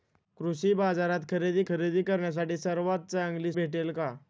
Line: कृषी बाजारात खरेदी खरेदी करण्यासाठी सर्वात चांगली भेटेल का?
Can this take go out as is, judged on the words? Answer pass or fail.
pass